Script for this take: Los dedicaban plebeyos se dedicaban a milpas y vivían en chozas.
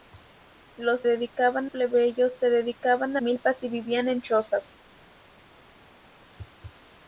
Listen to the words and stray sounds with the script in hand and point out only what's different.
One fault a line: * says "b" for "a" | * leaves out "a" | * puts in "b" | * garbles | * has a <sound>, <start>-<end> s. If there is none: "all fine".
all fine